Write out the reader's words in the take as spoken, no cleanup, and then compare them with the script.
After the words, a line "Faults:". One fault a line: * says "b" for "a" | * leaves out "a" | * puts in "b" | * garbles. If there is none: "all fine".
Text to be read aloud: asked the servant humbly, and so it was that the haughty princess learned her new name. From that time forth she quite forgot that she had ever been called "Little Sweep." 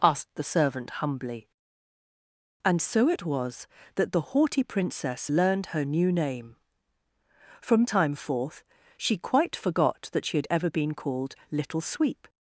asked the servant humbly, and so it was that the haughty princess learned her new name. From time forth she quite forgot that she had ever been called "Little Sweep."
Faults:
* leaves out "that"